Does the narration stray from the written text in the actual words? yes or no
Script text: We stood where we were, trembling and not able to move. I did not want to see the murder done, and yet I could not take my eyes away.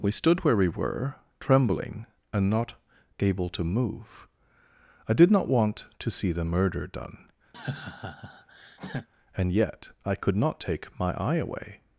yes